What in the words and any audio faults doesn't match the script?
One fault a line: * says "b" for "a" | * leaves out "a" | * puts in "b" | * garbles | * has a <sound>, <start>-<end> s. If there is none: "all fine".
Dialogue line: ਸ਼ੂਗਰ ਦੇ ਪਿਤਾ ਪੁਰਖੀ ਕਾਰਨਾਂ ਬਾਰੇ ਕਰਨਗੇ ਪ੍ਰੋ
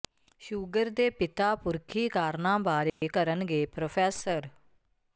* has a dropout, 2.9-3.0 s